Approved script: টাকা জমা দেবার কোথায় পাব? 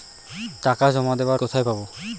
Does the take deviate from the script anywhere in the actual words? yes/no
no